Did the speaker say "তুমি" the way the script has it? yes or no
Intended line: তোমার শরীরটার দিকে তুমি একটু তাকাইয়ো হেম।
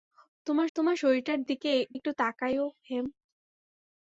no